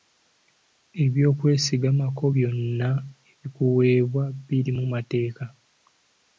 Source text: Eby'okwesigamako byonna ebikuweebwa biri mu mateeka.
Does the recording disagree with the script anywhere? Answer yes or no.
no